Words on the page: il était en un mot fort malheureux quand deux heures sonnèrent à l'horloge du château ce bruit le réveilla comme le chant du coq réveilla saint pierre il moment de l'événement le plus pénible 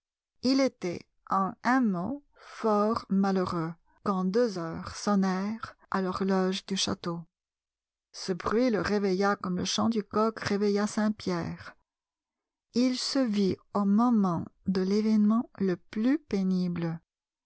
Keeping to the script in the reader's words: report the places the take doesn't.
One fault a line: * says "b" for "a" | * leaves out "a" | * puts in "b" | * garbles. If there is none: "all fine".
* puts in "se vit au"